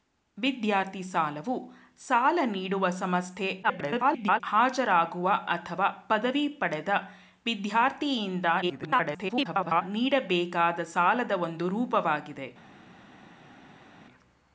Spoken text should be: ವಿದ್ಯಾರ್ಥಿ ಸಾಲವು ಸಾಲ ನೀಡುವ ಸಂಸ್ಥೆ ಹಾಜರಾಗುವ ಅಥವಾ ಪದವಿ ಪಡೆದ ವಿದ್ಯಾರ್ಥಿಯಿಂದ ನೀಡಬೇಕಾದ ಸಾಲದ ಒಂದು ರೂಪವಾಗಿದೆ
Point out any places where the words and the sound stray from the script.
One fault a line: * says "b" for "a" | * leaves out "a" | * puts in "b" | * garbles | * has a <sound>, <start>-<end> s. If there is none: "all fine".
* garbles
* garbles